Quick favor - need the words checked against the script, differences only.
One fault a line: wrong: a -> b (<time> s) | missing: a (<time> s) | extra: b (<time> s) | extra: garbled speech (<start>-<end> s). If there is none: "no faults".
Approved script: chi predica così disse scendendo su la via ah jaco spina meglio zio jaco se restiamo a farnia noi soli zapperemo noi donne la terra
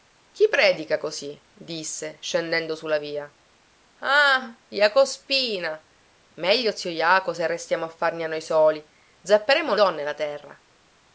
missing: noi (9.8 s)